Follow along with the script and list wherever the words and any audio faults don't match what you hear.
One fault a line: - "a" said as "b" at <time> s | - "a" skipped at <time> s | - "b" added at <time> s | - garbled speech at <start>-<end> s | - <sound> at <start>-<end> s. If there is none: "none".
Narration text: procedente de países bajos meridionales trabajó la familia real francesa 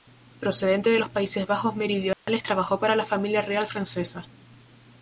- "los" added at 1.0 s
- dropout at 2.1-2.3 s
- "para" added at 2.8 s